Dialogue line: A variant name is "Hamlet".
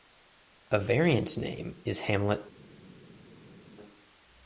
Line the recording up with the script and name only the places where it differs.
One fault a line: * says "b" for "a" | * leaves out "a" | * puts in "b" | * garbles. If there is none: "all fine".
all fine